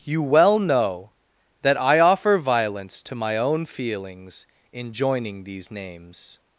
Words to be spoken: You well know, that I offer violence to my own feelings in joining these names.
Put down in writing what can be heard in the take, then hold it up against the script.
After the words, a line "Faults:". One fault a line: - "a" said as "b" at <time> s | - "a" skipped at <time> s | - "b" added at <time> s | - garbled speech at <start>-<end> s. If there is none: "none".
You well know, that I offer violence to my own feelings in joining these names.
Faults:
none